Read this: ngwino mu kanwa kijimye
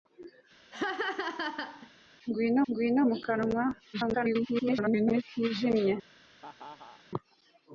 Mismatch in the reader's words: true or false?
true